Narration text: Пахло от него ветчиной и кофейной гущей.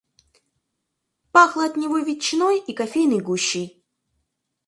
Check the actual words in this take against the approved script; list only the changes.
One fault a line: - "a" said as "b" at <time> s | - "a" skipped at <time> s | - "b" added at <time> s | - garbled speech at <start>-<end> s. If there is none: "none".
none